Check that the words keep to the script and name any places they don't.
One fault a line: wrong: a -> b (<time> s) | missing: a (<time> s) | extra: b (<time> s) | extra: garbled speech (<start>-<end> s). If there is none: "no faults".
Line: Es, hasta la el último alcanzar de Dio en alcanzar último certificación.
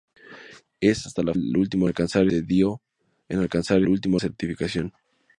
no faults